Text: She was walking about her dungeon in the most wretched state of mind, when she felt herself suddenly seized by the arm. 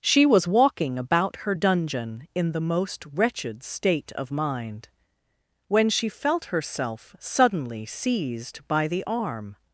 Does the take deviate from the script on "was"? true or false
false